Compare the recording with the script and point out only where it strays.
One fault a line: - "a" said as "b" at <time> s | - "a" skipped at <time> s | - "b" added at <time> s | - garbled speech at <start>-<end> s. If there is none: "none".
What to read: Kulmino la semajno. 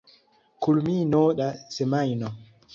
none